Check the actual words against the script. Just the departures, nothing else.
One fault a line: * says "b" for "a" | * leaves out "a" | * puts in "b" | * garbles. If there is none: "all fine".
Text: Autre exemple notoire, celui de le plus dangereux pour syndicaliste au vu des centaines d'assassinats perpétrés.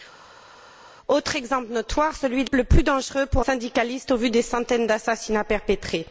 all fine